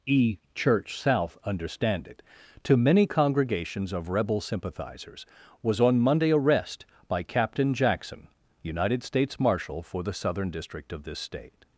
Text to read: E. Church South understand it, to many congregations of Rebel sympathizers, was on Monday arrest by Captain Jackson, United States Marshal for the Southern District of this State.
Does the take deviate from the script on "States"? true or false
false